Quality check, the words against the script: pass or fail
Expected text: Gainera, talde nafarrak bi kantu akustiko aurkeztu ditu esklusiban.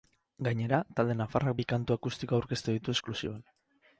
pass